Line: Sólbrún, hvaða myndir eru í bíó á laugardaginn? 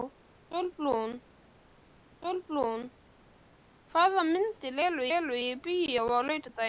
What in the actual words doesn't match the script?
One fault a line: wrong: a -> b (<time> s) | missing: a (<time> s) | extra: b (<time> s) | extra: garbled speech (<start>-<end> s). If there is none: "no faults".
extra: sólbrún (2.2 s)
extra: eru (5.1 s)